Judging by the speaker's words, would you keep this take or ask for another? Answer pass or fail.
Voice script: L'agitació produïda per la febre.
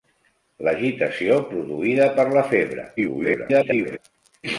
fail